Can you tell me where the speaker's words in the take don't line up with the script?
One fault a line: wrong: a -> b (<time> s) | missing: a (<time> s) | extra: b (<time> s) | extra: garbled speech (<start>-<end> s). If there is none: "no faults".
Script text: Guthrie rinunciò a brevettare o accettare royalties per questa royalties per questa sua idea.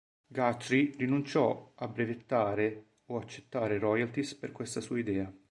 missing: royalties per questa (4.8 s)